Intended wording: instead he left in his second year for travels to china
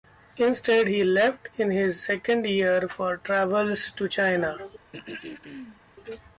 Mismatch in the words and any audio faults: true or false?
true